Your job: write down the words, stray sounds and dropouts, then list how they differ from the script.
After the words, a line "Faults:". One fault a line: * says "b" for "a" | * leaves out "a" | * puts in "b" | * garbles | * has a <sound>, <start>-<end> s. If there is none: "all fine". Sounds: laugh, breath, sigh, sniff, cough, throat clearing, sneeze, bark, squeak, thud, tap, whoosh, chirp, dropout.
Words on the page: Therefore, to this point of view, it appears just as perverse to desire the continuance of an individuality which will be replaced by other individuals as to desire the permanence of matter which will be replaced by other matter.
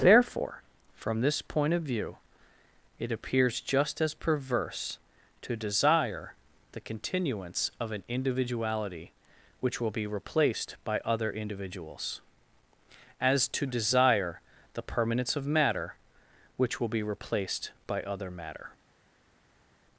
Therefore, from this point of view, it appears just as perverse to desire the continuance of an individuality which will be replaced by other individuals as to desire the permanence of matter which will be replaced by other matter.
Faults:
* says "from" for "to"